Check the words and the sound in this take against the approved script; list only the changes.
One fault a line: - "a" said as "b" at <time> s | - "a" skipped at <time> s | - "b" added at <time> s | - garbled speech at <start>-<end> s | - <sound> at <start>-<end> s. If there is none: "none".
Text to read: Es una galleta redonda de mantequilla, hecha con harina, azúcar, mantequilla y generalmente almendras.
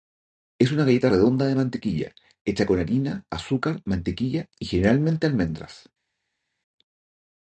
none